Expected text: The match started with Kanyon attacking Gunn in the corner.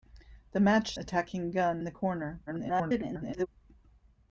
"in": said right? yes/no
no